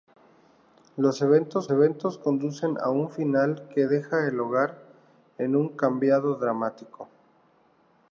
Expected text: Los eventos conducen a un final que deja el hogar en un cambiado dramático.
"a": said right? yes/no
yes